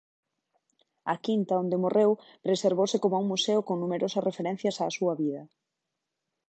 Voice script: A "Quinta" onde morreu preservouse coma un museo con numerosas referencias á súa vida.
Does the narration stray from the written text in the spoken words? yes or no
no